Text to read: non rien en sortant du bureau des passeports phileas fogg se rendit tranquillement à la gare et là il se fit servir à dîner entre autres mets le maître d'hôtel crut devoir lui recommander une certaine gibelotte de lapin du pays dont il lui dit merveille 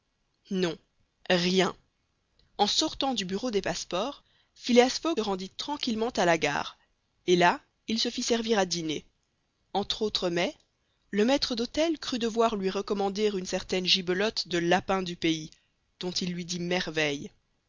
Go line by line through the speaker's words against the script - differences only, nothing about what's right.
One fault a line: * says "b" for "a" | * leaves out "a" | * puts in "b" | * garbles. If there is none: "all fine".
* leaves out "se"